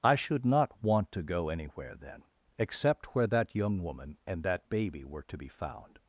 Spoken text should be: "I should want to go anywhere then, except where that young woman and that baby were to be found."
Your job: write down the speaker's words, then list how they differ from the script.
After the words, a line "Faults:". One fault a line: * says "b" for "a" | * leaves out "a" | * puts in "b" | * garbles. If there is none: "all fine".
"I should not want to go anywhere then, except where that young woman and that baby were to be found."
Faults:
* puts in "not"